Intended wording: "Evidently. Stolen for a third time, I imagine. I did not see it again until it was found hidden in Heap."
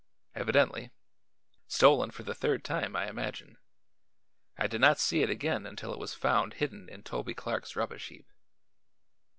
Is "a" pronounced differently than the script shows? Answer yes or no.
yes